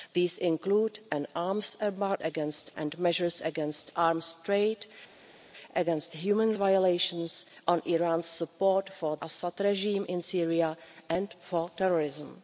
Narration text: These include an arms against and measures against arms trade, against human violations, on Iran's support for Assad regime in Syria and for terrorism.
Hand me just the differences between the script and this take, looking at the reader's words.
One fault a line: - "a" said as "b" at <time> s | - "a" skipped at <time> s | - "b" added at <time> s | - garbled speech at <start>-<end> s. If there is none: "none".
none